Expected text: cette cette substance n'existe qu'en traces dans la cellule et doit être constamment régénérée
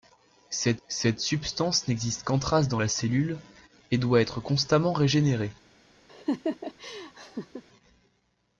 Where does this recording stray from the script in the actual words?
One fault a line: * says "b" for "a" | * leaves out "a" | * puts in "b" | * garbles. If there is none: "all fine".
all fine